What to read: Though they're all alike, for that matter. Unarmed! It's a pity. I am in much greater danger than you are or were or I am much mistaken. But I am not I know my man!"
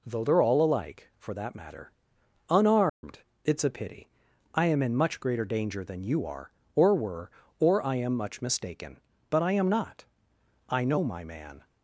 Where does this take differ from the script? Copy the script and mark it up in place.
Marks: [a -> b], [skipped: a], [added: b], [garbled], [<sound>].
Though they're all alike, for that matter. Unarmed! [dropout] It's a pity. I am in much greater danger than you are or were or I am much mistaken. But I am not I know my man!"